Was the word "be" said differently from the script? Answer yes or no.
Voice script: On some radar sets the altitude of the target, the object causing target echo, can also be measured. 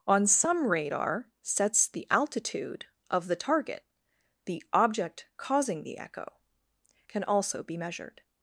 no